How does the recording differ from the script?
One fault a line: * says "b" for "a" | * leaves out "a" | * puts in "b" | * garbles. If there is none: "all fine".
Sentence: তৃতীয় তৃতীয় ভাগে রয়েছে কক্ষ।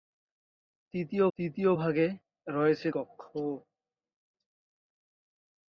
all fine